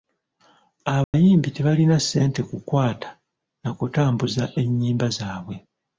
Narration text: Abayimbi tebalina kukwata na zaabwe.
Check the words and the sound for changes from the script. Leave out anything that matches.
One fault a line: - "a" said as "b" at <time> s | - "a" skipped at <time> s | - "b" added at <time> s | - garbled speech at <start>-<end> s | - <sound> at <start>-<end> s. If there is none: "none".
- dropout at 1.0-1.1 s
- "ssente" added at 2.0 s
- "kutambuza ennyimba" added at 3.8 s